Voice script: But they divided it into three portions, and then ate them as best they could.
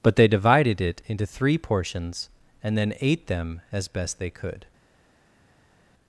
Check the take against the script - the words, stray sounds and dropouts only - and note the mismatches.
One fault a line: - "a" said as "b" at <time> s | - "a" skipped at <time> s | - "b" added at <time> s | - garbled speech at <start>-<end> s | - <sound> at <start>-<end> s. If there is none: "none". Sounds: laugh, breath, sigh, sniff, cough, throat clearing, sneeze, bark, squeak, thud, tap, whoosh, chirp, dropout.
none